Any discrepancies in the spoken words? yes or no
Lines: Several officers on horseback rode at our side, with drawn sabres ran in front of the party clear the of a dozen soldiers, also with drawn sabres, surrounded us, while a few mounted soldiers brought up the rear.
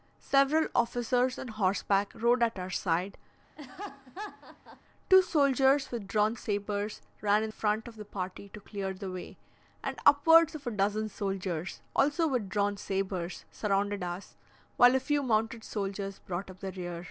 yes